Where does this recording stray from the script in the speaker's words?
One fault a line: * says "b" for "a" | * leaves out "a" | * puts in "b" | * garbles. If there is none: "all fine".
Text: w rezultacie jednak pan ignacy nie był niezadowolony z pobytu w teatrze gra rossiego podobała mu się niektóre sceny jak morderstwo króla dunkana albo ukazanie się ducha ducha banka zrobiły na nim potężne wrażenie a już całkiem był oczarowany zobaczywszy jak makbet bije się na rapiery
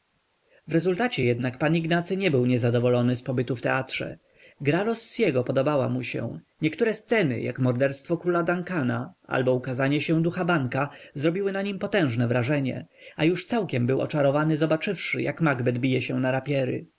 * leaves out "ducha"